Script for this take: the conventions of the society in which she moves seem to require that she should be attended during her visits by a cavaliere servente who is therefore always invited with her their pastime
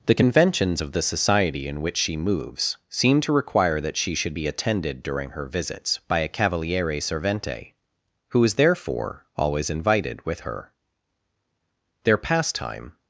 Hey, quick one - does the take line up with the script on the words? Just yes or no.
yes